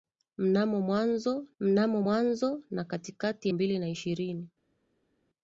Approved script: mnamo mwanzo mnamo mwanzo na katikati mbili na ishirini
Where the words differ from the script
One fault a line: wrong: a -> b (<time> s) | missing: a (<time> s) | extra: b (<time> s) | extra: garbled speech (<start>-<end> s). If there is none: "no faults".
no faults